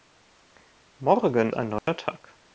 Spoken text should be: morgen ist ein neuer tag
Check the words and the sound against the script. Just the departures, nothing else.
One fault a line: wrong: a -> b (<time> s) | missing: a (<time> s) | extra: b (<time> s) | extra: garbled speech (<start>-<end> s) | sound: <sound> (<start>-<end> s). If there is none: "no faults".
missing: ist (1.5 s)
sound: dropout (1.8-1.9 s)